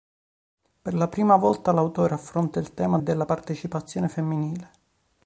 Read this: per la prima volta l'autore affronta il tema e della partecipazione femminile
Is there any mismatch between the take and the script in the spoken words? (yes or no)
no